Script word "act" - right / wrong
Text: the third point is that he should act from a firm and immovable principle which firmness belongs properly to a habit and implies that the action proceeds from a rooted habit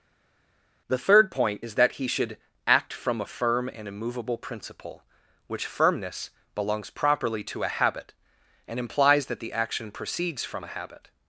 right